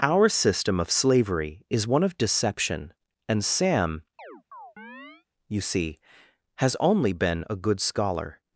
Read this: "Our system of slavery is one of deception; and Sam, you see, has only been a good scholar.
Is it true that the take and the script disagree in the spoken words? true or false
false